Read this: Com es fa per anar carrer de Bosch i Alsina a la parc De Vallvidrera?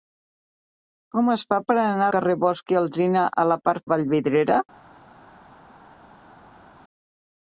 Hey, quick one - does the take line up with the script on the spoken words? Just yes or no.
yes